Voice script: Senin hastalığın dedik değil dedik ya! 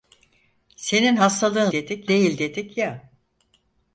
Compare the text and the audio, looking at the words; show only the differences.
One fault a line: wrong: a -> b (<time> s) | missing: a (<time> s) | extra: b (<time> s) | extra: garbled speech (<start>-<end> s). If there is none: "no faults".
no faults